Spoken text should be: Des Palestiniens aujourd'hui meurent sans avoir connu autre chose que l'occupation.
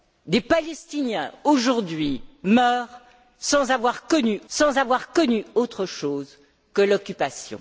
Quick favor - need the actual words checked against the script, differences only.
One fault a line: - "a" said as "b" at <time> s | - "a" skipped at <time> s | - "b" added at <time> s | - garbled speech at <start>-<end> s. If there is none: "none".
- "sans avoir connu" added at 4.5 s